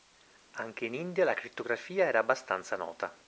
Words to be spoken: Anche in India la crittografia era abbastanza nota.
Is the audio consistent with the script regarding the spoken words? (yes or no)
yes